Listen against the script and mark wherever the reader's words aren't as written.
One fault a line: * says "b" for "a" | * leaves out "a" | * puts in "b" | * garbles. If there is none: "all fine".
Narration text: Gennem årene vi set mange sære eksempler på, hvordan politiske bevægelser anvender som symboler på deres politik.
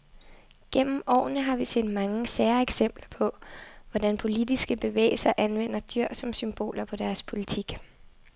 * puts in "har"
* puts in "dyr"